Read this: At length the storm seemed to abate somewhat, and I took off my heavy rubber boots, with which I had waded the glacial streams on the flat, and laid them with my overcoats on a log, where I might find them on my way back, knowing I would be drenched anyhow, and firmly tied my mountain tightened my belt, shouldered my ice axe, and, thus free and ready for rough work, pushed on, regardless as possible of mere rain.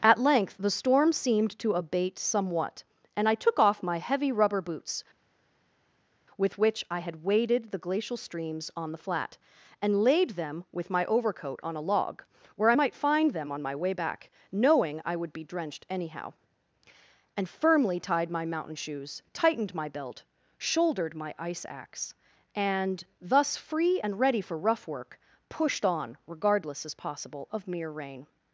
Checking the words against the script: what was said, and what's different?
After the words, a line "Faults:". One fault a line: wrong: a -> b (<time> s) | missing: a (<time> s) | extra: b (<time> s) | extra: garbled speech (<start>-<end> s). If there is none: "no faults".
At length the storm seemed to abate somewhat, and I took off my heavy rubber boots, with which I had waded the glacial streams on the flat, and laid them with my overcoat on a log, where I might find them on my way back, knowing I would be drenched anyhow, and firmly tied my mountain shoes, tightened my belt, shouldered my ice axe, and, thus free and ready for rough work, pushed on, regardless as possible of mere rain.
Faults:
wrong: overcoats -> overcoat (11.1 s)
extra: shoes (18.8 s)